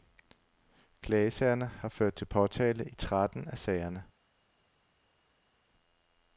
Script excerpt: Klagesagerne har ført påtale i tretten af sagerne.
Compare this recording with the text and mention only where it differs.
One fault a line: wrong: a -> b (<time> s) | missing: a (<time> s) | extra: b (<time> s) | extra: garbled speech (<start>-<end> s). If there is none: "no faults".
extra: til (2.1 s)